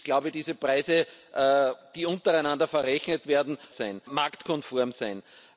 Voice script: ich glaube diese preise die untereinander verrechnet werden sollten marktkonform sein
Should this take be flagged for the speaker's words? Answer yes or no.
yes